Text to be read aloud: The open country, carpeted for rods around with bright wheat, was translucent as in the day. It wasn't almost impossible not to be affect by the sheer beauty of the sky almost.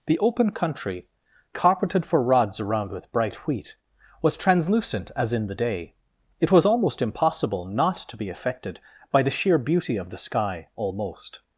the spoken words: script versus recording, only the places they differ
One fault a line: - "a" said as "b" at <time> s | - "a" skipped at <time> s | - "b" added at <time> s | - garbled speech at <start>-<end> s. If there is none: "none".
- "wasn't" said as "was" at 6.5 s
- "affect" said as "affected" at 8.3 s